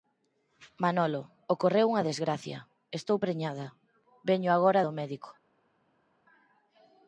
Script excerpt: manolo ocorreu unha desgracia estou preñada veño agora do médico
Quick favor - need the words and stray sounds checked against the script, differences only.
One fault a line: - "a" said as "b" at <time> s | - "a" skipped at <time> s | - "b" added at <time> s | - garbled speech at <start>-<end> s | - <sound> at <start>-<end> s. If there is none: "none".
none